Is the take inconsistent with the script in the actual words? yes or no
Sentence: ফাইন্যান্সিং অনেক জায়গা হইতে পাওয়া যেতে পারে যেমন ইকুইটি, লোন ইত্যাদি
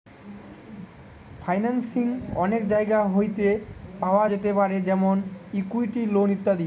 no